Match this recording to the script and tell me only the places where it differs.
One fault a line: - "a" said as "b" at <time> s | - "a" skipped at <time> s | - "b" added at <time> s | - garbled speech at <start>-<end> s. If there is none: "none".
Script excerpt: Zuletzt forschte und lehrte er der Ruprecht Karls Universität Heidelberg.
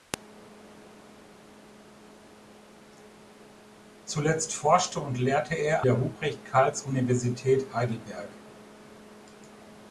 none